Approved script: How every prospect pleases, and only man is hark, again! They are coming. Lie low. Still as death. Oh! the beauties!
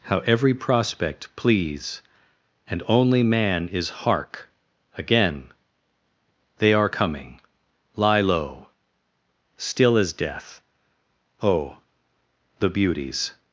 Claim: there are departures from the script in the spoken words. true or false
true